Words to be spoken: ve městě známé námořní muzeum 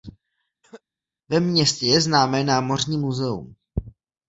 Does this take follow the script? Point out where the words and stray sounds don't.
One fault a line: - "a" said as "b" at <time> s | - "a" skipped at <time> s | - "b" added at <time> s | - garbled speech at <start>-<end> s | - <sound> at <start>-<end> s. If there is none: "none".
- cough at 0.6-0.8 s
- "je" added at 1.9 s